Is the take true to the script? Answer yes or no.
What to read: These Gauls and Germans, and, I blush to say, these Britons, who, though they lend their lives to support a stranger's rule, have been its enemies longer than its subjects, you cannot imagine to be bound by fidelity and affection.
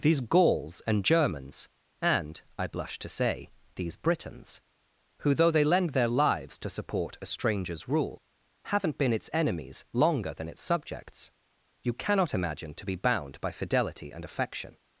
no